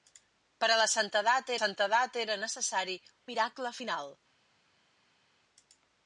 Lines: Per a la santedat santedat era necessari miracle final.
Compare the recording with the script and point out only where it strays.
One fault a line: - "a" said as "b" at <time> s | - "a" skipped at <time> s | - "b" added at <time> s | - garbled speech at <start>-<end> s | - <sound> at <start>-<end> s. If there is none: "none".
none